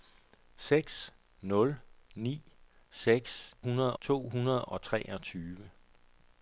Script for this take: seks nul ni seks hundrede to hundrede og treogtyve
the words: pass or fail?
pass